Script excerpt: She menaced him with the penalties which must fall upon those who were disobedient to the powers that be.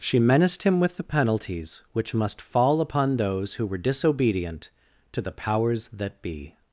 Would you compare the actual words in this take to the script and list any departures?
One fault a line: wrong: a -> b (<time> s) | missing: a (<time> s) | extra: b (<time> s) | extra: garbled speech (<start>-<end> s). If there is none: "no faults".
no faults